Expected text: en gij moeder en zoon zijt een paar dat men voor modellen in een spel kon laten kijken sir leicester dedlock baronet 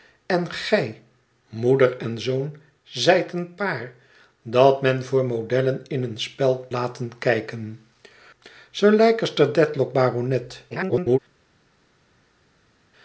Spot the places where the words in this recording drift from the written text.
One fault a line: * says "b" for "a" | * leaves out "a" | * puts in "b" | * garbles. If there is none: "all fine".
* leaves out "kon"
* garbles